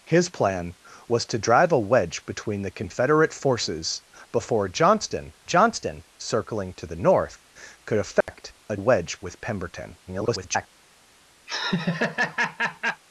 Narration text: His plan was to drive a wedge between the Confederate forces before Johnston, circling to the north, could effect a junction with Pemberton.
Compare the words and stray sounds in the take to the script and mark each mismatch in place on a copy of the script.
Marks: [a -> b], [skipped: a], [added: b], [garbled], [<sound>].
His plan was to drive a wedge between the Confederate forces before Johnston, [added: Johnston] circling to the north, could effect [dropout] a [junction -> wedge] with Pemberton. [garbled] [laugh]